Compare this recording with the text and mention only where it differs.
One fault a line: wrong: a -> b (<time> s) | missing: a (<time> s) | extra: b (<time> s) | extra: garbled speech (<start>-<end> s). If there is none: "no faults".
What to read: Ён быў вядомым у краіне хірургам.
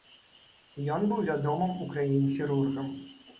no faults